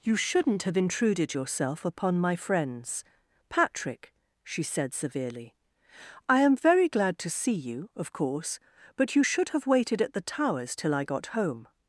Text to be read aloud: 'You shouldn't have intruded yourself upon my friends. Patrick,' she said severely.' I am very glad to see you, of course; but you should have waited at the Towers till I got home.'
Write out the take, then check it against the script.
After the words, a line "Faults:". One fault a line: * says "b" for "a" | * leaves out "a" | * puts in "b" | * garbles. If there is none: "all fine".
'You shouldn't have intruded yourself upon my friends. Patrick,' she said severely.' I am very glad to see you, of course; but you should have waited at the Towers till I got home.'
Faults:
all fine